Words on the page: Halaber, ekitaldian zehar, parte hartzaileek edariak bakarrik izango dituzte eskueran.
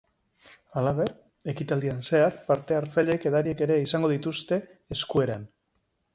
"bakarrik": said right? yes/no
no